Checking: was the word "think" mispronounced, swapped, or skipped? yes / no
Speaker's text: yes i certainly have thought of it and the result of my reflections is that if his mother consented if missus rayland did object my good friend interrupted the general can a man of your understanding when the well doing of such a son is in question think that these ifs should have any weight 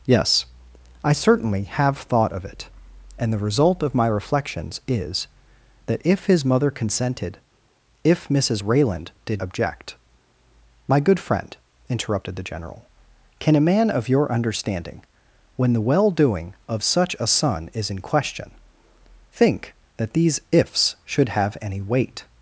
no